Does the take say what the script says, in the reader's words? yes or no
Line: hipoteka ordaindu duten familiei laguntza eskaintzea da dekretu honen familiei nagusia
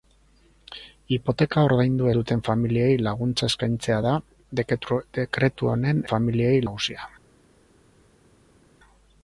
yes